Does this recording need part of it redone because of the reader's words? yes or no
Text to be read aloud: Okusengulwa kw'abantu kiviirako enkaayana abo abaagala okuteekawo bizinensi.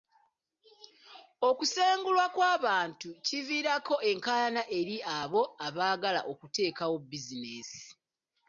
yes